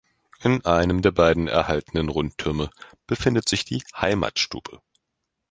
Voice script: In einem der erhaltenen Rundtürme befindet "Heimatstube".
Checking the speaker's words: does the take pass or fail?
fail